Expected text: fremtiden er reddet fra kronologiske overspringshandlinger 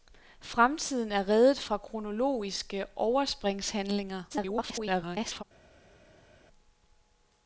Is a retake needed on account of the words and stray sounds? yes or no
yes